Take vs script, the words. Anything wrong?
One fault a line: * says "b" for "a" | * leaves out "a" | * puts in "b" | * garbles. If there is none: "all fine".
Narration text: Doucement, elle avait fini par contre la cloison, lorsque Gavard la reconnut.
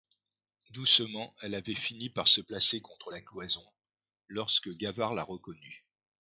* puts in "se placer"